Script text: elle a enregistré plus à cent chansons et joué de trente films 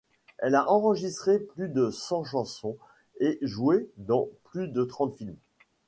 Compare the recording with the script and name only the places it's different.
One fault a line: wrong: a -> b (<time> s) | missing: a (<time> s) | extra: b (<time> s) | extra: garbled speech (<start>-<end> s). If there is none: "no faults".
wrong: à -> de (1.7 s)
extra: dans plus (4.0 s)